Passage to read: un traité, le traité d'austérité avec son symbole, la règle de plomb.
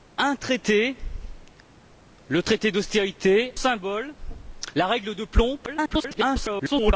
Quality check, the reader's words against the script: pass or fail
fail